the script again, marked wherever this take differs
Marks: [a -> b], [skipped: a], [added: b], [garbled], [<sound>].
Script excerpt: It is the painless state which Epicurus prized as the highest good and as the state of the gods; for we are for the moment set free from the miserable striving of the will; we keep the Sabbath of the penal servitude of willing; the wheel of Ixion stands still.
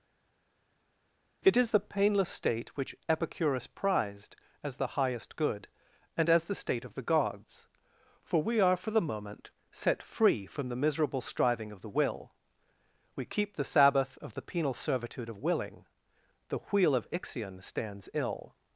It is the painless state which Epicurus prized as the highest good and as the state of the gods; for we are for the moment set free from the miserable striving of the will; we keep the Sabbath of the penal servitude of willing; the wheel of Ixion stands [still. -> ill]